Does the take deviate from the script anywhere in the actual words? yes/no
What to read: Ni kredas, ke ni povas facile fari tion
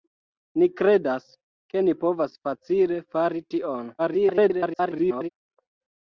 yes